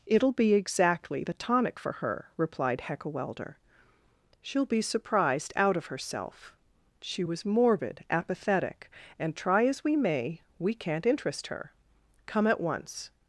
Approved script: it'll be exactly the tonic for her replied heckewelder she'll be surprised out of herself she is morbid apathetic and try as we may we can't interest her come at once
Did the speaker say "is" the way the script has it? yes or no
no